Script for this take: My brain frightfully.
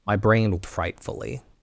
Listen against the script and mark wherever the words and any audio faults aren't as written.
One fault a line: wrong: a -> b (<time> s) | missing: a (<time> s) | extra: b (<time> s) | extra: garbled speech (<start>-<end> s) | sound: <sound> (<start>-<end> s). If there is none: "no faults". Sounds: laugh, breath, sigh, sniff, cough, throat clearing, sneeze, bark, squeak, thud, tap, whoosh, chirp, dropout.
no faults